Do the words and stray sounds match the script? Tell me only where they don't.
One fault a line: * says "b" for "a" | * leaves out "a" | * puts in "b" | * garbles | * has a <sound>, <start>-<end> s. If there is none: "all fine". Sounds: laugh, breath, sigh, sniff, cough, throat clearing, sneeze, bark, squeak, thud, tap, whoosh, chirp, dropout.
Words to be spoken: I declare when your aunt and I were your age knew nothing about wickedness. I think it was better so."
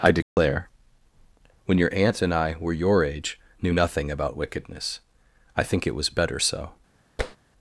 * has a dropout, 0.2-0.4 s
* has a tap, 7.2-7.4 s